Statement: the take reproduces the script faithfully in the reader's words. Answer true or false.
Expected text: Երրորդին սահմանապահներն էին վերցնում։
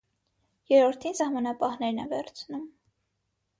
false